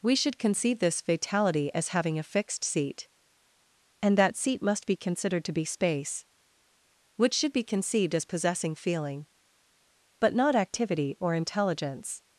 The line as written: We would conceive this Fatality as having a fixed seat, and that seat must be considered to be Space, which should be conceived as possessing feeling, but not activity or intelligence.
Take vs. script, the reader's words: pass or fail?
fail